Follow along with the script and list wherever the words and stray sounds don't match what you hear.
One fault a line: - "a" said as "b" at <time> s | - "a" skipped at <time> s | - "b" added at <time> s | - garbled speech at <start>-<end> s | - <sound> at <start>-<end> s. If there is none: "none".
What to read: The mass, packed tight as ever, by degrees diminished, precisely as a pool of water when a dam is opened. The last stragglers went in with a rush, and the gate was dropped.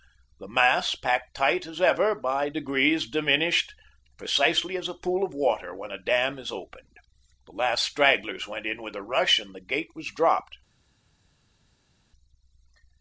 none